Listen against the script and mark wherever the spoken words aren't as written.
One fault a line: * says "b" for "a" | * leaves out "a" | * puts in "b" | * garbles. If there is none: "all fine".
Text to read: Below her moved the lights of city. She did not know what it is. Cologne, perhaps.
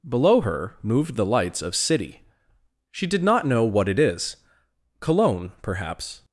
all fine